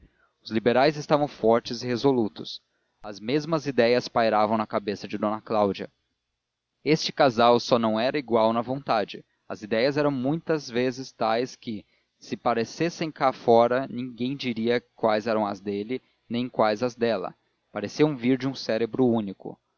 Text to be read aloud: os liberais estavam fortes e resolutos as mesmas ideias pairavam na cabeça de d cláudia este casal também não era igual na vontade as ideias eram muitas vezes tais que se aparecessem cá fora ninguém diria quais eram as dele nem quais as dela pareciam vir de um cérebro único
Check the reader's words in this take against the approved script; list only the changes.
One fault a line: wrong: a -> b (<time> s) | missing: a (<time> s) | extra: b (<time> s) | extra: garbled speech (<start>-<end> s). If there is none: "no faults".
wrong: também -> só (7.6 s)